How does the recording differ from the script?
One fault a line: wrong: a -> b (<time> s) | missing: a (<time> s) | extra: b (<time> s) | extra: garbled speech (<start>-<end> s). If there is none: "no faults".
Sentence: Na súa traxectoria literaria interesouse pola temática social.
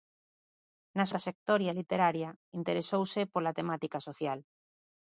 missing: súa (1.1 s)